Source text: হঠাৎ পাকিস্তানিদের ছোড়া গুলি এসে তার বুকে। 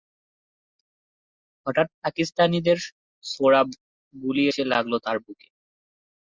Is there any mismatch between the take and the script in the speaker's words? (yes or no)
yes